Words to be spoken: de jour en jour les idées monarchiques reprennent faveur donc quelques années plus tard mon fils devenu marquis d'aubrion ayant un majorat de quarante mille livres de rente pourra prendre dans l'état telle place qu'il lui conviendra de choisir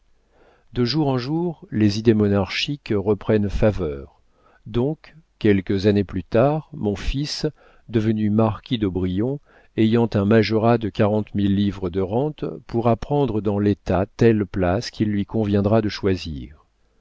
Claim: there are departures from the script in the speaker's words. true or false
false